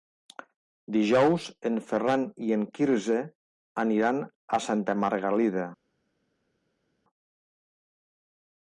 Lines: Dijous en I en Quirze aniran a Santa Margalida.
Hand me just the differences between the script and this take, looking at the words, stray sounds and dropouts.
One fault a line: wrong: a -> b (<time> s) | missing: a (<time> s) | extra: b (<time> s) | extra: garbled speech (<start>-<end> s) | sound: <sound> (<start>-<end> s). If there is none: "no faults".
extra: Ferran (1.9 s)